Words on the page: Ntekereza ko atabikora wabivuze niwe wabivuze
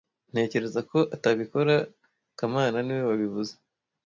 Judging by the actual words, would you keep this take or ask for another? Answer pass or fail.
fail